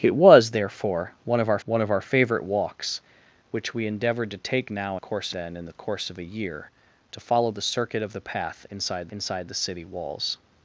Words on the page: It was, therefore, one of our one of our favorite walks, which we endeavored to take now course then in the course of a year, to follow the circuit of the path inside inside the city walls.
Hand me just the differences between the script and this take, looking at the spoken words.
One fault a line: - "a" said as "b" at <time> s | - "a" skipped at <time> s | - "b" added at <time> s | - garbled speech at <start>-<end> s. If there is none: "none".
none